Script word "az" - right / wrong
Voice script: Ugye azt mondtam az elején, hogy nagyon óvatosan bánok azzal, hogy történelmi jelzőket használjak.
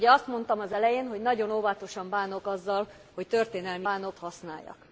right